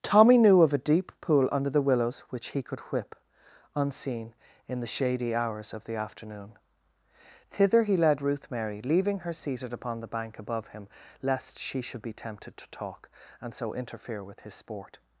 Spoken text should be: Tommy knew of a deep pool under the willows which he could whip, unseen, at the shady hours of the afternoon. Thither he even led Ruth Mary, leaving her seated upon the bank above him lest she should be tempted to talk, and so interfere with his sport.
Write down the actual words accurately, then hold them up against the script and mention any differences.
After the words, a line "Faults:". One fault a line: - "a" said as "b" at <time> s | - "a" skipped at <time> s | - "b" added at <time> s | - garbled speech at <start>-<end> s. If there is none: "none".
Tommy knew of a deep pool under the willows which he could whip, unseen, in the shady hours of the afternoon. Thither he led Ruth Mary, leaving her seated upon the bank above him lest she should be tempted to talk, and so interfere with his sport.
Faults:
- "at" said as "in" at 4.7 s
- "even" skipped at 8.0 s